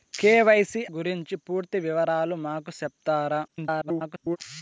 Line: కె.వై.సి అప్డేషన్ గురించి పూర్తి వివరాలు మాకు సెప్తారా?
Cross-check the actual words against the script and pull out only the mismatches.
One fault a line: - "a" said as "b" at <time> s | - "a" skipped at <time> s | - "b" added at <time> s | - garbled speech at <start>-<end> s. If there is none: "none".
- "అప్డేషన్" skipped at 0.8 s
- garbled speech at 3.5-4.4 s